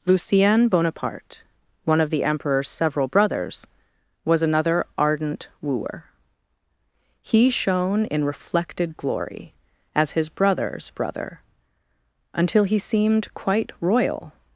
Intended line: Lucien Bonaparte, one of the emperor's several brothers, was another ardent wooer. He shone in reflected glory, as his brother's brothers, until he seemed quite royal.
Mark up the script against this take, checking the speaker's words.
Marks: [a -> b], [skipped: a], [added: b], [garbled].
Lucien Bonaparte, one of the emperor's several brothers, was another ardent wooer. He shone in reflected glory, as his brother's [brothers, -> brother] until he seemed quite royal.